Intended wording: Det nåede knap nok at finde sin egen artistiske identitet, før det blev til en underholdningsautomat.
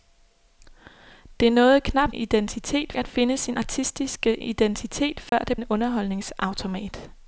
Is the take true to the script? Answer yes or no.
no